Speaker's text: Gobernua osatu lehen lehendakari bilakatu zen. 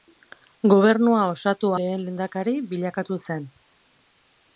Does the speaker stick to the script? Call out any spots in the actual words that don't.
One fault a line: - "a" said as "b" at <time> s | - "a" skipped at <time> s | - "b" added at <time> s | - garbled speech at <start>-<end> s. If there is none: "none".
none